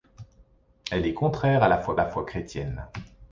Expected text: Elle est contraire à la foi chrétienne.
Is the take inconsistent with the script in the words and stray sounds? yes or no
yes